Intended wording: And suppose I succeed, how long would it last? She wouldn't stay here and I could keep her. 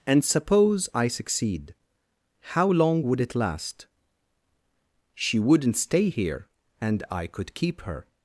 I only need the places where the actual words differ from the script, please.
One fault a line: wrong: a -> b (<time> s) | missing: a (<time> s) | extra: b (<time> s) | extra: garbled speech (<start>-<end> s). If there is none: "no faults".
no faults